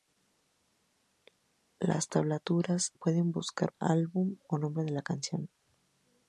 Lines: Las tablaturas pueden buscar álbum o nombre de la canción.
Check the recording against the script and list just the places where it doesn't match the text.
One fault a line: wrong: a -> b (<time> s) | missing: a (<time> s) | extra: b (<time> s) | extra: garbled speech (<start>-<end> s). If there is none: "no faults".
no faults